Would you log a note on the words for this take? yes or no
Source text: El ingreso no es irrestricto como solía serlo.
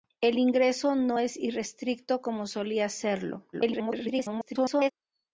yes